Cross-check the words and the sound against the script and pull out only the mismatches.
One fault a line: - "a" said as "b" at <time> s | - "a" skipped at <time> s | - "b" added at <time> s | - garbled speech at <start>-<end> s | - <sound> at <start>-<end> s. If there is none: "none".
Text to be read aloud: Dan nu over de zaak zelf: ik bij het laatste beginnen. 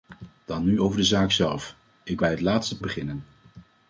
none